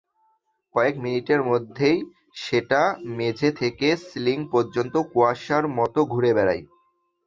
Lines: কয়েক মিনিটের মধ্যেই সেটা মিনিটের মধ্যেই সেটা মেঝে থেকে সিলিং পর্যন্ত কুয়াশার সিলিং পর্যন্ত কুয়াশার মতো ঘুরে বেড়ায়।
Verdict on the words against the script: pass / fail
fail